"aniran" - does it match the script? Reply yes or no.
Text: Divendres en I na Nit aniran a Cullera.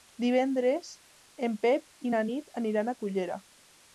yes